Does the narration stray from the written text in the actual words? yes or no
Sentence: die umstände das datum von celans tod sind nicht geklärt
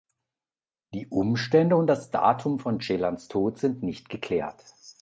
yes